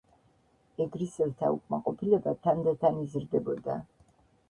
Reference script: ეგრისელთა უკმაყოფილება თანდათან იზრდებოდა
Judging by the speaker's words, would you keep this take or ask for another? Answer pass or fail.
pass